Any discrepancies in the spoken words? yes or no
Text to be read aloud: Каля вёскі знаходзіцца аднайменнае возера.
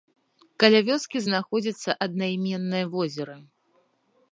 no